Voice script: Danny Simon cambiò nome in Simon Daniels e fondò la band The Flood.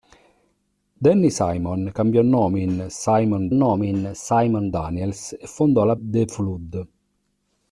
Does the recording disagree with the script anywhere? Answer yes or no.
yes